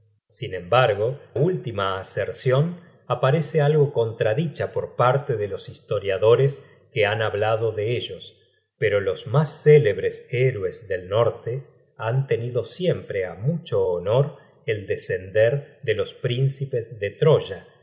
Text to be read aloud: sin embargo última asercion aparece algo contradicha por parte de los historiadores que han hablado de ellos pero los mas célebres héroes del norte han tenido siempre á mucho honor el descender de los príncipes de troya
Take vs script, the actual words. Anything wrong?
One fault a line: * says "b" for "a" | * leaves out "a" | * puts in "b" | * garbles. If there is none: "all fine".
all fine